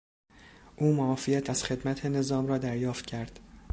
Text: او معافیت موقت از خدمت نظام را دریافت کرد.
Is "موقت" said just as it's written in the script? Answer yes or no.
no